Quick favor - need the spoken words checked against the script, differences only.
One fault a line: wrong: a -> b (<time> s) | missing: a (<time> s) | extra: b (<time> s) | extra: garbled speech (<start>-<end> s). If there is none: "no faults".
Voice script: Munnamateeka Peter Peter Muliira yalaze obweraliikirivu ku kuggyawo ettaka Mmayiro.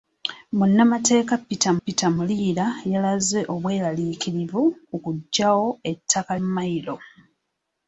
no faults